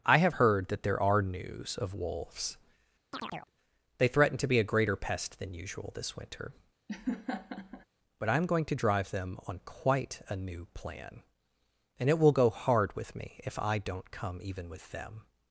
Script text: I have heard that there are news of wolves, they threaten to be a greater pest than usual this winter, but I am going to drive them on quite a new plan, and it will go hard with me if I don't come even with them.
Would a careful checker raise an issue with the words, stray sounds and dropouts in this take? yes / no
yes